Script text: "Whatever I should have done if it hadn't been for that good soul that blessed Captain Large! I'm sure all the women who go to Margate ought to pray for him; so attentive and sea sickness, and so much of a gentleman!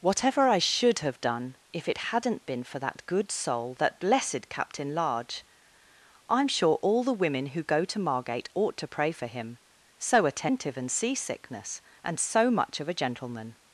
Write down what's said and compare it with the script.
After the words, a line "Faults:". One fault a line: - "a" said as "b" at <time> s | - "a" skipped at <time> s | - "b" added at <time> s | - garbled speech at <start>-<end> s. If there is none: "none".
"Whatever I should have done if it hadn't been for that good soul that blessed Captain Large! I'm sure all the women who go to Margate ought to pray for him; so attentive and sea sickness, and so much of a gentleman!
Faults:
none